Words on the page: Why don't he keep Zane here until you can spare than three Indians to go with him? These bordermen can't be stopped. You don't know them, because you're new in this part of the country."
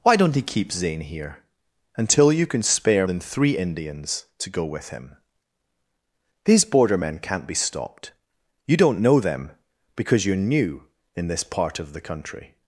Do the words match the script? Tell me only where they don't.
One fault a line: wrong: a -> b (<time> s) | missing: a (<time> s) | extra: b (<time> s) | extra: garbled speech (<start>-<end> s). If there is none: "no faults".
no faults